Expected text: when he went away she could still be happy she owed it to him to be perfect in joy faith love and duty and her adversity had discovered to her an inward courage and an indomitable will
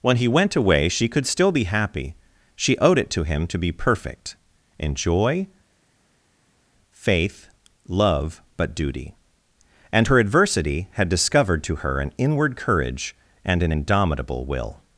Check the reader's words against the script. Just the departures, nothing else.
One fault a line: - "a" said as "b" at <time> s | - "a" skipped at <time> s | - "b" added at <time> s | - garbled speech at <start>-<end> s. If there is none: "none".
- "and" said as "but" at 8.6 s